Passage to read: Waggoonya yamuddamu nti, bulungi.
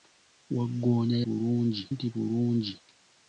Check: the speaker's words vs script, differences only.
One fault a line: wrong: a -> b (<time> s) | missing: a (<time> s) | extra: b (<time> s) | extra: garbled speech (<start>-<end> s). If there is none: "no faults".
wrong: yamuddamu -> bulungi (1.2 s)